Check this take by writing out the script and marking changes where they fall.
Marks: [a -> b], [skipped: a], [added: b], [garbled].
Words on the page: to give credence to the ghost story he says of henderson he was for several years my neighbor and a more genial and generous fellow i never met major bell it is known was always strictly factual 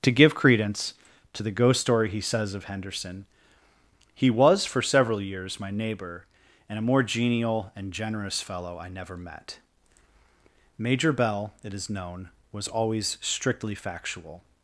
to give credence to the ghost story he says of henderson he was for several years my neighbor and a more genial and generous fellow i never met major bell it is known was always strictly factual